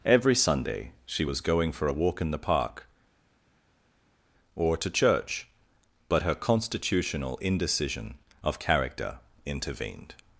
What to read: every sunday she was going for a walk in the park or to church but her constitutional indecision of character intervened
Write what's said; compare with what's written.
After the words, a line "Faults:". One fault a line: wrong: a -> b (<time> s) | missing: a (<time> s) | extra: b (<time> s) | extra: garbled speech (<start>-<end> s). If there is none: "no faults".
every sunday she was going for a walk in the park or to church but her constitutional indecision of character intervened
Faults:
no faults